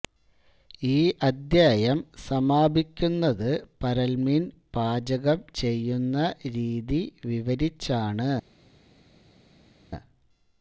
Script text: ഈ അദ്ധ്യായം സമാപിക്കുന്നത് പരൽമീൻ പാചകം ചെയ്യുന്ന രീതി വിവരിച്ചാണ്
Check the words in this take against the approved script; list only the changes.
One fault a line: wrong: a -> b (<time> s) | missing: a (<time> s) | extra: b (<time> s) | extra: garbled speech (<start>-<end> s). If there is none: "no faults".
no faults